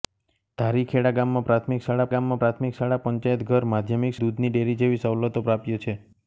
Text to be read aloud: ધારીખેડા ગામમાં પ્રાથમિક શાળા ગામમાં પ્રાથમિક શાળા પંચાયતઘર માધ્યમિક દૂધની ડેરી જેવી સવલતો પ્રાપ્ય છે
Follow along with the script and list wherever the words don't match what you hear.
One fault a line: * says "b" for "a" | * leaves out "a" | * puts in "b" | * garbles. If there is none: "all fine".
all fine